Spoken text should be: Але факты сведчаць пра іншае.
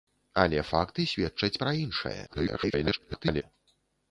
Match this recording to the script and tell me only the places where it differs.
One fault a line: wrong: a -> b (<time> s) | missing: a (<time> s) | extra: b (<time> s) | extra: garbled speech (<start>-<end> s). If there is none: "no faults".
extra: garbled speech (2.3-3.4 s)